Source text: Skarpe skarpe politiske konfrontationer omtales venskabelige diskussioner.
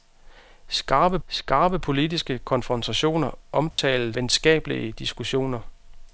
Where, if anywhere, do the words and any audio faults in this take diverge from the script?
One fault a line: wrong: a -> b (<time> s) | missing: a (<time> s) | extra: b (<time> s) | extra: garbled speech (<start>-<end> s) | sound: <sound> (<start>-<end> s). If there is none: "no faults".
sound: dropout (3.7-3.8 s)